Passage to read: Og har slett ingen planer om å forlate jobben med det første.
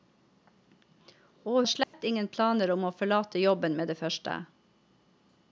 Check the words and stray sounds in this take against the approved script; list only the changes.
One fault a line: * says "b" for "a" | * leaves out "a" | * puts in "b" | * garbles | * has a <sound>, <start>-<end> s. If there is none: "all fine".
* has a dropout, 1.8-1.9 s